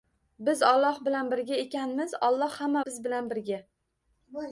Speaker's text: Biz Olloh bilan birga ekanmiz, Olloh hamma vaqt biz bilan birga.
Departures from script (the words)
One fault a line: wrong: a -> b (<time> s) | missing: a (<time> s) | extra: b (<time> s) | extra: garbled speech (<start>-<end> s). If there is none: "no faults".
missing: vaqt (2.9 s)